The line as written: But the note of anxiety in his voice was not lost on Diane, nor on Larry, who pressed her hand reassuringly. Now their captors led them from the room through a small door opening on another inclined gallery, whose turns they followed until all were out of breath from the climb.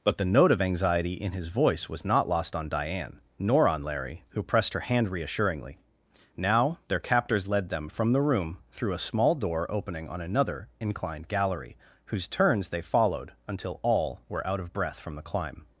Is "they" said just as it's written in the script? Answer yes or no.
yes